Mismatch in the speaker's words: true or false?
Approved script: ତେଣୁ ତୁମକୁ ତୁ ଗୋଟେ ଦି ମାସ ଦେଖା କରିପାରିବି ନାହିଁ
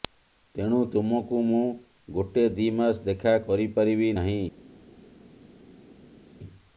true